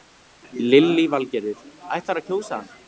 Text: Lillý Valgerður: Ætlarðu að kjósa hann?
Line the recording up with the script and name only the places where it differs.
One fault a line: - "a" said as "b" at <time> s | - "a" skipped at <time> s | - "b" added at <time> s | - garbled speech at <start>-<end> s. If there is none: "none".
none